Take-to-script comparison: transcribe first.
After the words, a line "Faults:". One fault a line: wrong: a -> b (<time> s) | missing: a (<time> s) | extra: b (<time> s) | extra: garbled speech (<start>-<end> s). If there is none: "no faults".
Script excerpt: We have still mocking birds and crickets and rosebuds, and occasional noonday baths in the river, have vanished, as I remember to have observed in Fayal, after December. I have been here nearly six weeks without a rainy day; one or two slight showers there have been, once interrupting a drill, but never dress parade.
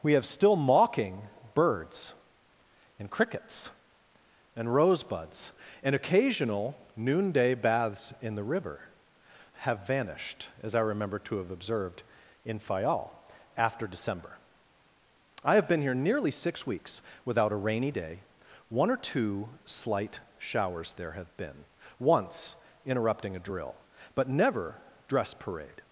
We have still mocking birds and crickets and rosebuds, and occasional noonday baths in the river, have vanished, as I remember to have observed in Fayal, after December. I have been here nearly six weeks without a rainy day; one or two slight showers there have been, once interrupting a drill, but never dress parade.
Faults:
no faults